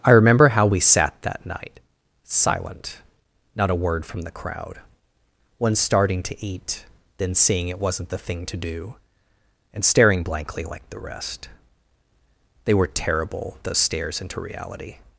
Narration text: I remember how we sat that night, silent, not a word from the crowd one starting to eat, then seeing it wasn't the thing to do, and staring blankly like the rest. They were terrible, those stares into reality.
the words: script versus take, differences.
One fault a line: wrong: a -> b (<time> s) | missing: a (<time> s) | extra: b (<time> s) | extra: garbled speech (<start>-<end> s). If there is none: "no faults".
no faults